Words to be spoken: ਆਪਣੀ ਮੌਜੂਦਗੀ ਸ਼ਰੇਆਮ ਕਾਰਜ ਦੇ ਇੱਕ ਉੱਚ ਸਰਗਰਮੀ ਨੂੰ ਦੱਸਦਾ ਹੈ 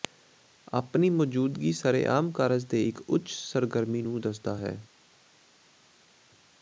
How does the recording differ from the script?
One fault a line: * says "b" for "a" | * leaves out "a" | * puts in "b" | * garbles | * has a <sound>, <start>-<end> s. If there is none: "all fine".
all fine